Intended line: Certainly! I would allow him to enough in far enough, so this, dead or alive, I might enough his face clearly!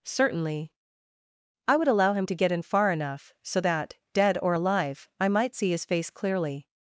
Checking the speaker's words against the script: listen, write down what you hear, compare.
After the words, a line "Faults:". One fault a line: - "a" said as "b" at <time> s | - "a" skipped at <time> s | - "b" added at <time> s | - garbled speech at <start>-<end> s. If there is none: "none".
Certainly! I would allow him to get in far enough, so that, dead or alive, I might see his face clearly!
Faults:
- "enough" said as "get" at 2.3 s
- "this" said as "that" at 3.6 s
- "enough" said as "see" at 5.6 s